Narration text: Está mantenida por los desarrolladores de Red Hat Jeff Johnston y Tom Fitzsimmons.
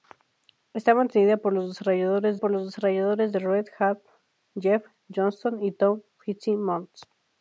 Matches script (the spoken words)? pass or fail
fail